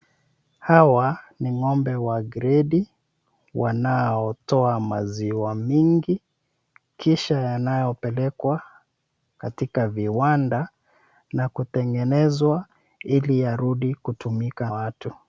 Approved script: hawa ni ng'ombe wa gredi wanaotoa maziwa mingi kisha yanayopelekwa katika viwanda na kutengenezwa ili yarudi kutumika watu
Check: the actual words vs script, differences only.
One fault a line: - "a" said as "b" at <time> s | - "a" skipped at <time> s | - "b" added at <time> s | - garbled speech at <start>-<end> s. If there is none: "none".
none